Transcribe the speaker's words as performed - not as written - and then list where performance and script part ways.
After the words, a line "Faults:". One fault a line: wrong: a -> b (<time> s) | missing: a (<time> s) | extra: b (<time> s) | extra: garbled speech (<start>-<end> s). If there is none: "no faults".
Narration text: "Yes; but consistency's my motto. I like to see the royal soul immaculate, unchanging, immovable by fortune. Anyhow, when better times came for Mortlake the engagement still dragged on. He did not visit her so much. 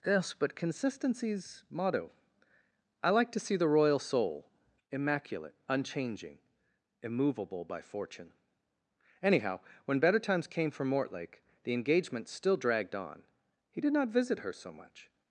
"Yes; but consistency's motto. I like to see the royal soul immaculate, unchanging, immovable by fortune. Anyhow, when better times came for Mortlake the engagement still dragged on. He did not visit her so much.
Faults:
missing: my (1.6 s)